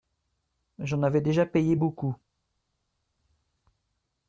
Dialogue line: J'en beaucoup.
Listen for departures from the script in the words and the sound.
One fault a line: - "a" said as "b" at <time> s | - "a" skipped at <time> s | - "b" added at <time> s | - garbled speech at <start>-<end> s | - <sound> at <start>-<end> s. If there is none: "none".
- "avais déjà payé" added at 1.0 s